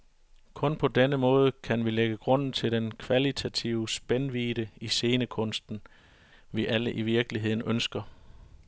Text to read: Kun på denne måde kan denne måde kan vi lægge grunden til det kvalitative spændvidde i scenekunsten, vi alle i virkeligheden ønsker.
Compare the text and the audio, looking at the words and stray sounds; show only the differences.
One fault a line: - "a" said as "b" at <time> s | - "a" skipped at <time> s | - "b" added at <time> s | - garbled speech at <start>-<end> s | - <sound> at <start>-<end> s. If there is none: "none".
- "denne måde kan" skipped at 1.9 s
- "det" said as "den" at 2.7 s